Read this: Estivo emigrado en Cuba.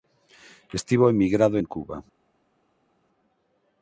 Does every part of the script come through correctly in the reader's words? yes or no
yes